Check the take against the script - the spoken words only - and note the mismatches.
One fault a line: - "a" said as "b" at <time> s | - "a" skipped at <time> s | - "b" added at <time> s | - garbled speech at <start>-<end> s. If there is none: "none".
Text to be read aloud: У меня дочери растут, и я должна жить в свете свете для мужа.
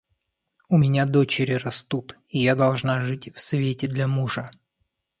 - "свете" skipped at 3.9 s